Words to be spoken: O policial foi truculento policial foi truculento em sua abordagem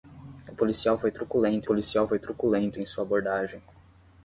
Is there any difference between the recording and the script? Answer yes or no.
no